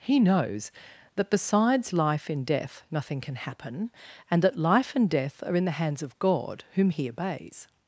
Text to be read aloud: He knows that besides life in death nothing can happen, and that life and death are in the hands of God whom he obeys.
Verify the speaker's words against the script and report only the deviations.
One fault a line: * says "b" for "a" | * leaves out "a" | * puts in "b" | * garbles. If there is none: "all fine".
all fine